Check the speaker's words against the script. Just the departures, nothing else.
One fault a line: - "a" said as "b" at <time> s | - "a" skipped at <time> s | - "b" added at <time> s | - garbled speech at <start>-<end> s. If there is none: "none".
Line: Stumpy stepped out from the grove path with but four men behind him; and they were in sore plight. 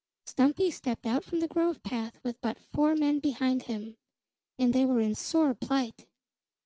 none